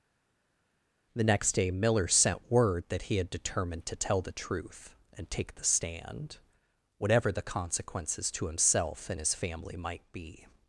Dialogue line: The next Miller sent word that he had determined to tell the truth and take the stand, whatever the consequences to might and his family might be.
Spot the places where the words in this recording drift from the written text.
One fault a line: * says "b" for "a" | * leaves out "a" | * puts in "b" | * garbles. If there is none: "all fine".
* puts in "day"
* says "himself" for "might"